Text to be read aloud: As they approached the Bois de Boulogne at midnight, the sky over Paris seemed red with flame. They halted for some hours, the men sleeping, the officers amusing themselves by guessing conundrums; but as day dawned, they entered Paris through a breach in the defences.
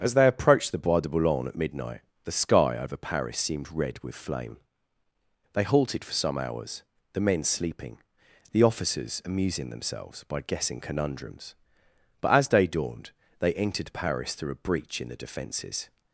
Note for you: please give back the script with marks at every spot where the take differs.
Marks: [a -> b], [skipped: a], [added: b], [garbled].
As they approached the Bois de Boulogne at midnight, the sky over Paris seemed red with flame. They halted for some hours, the men sleeping, the officers amusing themselves by guessing conundrums; but as day dawned, they entered Paris through a breach in the defences.